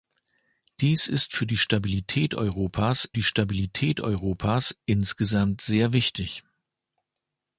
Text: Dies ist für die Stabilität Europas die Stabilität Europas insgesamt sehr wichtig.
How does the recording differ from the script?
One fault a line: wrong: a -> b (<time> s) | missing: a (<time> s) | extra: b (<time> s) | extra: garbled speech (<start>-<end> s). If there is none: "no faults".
no faults